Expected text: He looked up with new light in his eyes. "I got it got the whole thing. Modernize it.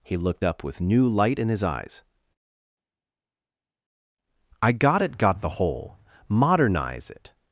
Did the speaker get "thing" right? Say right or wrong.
wrong